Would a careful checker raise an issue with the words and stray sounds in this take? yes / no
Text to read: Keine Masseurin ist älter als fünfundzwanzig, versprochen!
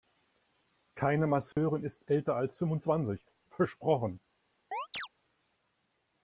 yes